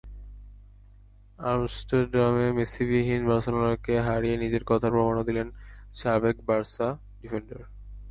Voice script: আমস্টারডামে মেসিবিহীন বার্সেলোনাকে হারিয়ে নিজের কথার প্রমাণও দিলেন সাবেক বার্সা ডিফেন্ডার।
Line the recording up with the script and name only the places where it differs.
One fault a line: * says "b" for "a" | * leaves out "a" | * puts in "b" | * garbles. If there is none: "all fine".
all fine